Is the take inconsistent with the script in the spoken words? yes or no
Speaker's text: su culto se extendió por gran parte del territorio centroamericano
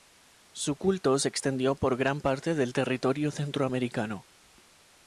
no